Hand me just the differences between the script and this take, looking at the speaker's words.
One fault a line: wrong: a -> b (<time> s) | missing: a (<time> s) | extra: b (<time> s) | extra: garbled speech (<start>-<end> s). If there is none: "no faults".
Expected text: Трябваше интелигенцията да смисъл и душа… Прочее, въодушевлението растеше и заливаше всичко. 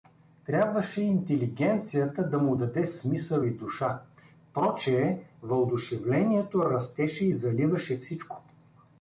extra: му даде (2.4 s)